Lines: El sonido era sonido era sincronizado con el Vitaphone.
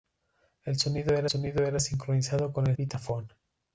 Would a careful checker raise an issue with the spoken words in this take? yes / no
no